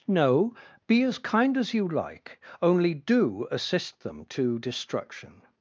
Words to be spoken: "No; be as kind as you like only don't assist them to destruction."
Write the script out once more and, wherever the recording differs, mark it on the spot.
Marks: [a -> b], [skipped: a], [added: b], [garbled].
"No; be as kind as you like only [don't -> do] assist them to destruction."